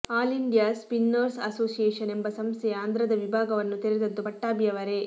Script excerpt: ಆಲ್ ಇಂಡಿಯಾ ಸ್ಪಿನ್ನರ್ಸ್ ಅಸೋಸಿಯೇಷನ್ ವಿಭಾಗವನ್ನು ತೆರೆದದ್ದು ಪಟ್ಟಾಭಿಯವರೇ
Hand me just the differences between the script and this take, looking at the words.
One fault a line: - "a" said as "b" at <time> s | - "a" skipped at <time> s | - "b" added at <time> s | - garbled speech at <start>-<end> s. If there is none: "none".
- "ಎಂಬ ಸಂಸ್ಥೆಯ ಆಂಧ್ರದ" added at 2.1 s